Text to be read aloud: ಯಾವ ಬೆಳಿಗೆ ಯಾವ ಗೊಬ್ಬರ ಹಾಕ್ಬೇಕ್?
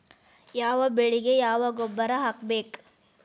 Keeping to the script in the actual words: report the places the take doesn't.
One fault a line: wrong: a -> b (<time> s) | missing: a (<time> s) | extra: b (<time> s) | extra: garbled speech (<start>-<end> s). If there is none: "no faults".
no faults